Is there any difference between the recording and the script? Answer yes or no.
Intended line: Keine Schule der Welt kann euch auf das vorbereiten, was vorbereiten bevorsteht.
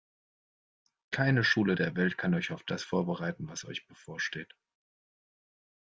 yes